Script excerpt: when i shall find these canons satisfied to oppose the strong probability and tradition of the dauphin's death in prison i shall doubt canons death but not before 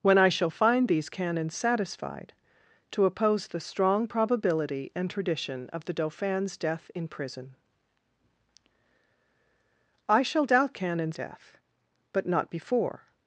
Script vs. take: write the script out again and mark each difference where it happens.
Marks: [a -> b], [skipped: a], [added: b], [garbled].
when i shall find these canons satisfied to oppose the strong probability and tradition of the dauphin's death in prison i shall doubt canons death but not before